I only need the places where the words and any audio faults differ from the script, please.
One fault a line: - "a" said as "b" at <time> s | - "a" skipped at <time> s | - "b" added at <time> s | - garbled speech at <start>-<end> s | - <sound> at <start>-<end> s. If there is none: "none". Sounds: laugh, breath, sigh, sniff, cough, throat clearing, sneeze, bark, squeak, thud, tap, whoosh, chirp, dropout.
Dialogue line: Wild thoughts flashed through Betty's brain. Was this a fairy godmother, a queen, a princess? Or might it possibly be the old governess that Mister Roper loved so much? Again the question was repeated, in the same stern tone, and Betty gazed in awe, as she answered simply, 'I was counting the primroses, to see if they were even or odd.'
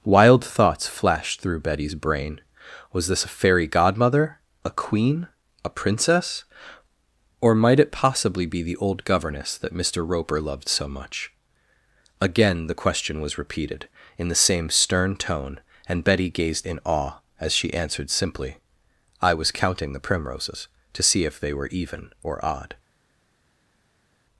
none